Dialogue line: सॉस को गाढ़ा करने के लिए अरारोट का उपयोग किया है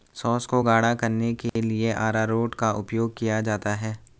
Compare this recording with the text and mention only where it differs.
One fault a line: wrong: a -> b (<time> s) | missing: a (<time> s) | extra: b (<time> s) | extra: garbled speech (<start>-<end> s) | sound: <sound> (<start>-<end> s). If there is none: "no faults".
sound: dropout (1.5-1.6 s)
extra: जाता (3.4 s)